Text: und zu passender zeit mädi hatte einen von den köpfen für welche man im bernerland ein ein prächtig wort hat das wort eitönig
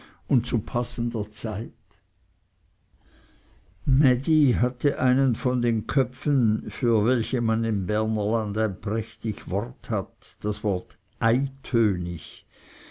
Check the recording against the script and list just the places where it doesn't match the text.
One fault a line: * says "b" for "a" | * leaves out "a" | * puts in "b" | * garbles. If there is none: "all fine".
* leaves out "ein"